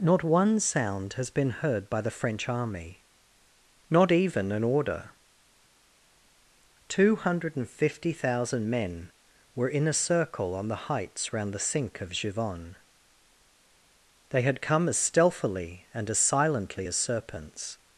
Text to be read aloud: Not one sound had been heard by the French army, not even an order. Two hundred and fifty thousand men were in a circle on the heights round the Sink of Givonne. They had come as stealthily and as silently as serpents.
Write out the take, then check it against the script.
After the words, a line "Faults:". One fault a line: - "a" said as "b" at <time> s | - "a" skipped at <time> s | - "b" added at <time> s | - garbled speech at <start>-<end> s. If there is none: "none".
Not one sound has been heard by the French army, not even an order. Two hundred and fifty thousand men were in a circle on the heights round the Sink of Givonne. They had come as stealthily and as silently as serpents.
Faults:
- "had" said as "has" at 1.1 s